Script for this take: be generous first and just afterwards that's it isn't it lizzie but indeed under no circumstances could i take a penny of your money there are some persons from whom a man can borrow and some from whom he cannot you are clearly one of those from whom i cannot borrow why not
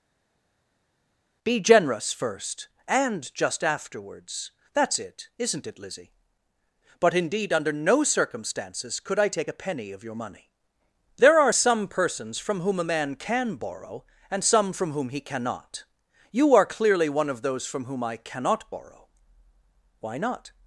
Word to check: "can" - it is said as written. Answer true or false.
true